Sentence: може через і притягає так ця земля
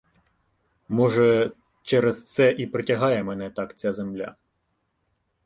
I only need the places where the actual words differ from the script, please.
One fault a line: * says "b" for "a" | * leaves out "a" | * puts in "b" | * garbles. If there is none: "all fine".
* puts in "це"
* puts in "мене"